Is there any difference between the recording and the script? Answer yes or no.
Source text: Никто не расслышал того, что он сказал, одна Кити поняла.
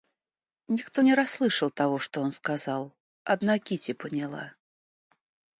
no